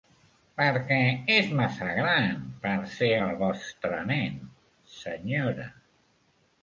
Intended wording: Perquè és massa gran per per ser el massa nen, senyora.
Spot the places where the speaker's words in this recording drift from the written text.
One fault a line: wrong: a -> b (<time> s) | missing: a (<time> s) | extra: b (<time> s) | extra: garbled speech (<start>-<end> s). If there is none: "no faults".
missing: per (2.7 s)
wrong: massa -> vostre (3.4 s)